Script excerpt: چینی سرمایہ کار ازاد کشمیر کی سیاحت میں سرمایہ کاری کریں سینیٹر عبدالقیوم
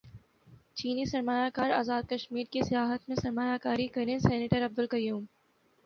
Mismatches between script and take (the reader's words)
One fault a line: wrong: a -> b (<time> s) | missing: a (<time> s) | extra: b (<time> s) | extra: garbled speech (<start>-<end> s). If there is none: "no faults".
no faults